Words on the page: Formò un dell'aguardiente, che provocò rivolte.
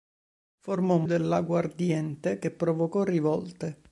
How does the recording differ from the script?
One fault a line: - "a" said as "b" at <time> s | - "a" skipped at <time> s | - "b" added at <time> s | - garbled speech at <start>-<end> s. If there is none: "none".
none